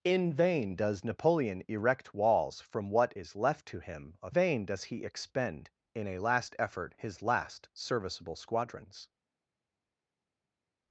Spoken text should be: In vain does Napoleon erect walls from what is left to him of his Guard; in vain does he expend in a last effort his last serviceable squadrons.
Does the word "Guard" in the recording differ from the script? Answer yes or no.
yes